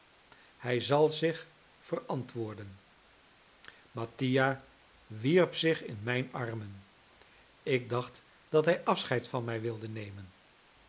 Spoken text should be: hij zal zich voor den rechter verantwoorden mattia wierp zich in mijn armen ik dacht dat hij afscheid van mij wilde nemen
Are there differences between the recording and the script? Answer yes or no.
yes